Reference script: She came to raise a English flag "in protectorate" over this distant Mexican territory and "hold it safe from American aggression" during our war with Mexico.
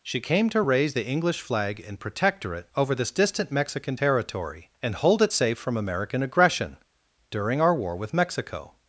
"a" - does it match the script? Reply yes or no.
no